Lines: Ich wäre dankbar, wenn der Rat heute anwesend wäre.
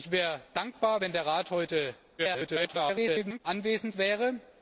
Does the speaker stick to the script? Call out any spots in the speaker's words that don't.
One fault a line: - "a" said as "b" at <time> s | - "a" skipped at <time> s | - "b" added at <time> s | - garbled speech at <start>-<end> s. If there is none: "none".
- garbled speech at 2.2-3.4 s